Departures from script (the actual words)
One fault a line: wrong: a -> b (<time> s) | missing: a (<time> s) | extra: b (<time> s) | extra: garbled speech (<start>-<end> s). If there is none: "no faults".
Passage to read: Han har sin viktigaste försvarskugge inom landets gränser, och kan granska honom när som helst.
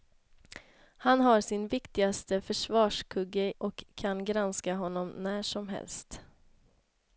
missing: inom landets gränser (3.5 s)